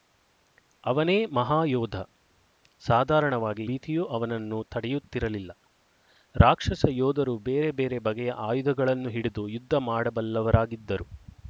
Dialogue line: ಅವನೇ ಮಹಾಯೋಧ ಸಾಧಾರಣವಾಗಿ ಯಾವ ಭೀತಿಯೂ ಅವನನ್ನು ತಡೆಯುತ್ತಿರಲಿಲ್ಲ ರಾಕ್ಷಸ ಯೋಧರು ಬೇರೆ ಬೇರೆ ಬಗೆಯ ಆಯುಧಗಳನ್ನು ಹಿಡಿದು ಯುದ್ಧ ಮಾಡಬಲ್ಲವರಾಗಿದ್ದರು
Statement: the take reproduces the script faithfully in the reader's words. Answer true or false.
false